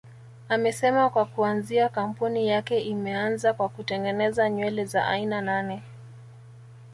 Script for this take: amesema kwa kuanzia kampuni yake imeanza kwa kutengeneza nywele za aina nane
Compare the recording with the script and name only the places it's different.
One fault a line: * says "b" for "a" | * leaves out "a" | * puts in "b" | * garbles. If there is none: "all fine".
all fine